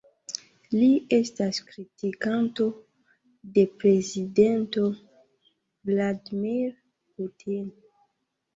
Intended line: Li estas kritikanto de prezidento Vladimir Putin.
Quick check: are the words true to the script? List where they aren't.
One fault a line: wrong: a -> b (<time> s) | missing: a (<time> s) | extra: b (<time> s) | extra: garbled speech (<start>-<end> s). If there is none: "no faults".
no faults